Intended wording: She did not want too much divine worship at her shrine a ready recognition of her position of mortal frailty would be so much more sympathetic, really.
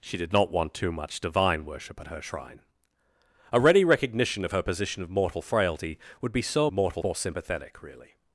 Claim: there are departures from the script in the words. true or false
true